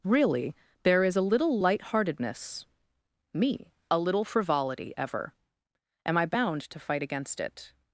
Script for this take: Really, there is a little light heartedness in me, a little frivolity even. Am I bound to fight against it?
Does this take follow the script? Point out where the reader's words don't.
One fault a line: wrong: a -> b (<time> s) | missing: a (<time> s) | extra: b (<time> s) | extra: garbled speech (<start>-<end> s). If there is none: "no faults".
missing: in (2.7 s)
wrong: even -> ever (5.0 s)